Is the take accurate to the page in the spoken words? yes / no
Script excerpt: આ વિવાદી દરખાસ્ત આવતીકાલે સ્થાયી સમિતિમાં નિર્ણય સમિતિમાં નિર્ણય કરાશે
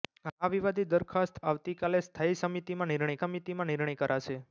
yes